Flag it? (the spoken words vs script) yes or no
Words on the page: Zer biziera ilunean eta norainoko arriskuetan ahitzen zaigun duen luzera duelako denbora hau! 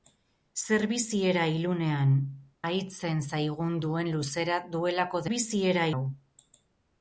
yes